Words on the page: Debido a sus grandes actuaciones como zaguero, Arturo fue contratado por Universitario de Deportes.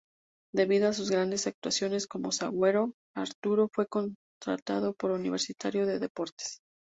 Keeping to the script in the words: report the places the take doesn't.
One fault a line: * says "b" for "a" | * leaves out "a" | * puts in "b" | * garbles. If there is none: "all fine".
all fine